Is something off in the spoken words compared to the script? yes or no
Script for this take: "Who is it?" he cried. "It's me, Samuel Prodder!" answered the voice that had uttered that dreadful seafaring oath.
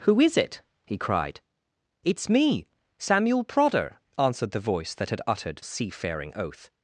yes